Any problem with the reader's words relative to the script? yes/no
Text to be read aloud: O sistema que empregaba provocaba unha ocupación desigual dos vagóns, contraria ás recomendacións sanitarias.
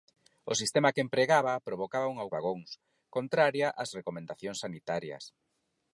yes